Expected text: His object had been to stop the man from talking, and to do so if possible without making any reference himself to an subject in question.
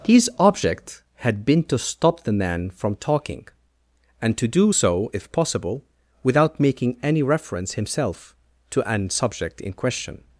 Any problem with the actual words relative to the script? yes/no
no